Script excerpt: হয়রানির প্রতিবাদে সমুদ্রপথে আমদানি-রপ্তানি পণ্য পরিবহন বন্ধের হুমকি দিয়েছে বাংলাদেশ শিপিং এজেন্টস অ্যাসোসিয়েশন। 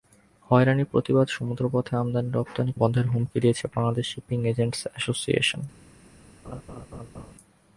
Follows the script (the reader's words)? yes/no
no